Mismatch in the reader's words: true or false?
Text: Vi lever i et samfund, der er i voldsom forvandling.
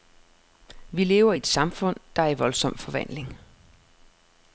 false